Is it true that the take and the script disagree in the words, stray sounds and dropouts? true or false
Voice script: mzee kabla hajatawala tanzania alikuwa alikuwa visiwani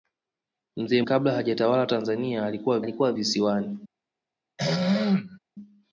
true